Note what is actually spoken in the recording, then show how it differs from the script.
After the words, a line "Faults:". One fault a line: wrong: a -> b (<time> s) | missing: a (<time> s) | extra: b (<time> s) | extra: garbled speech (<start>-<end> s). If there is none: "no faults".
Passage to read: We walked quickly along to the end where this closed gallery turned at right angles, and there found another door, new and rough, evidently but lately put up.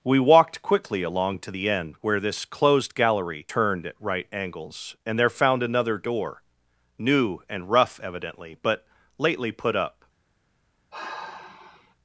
We walked quickly along to the end where this closed gallery turned at right angles, and there found another door, new and rough, evidently but lately put up.
Faults:
no faults